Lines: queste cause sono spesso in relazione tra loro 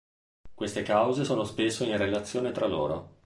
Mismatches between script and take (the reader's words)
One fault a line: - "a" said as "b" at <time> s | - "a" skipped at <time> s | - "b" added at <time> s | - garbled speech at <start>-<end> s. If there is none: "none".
none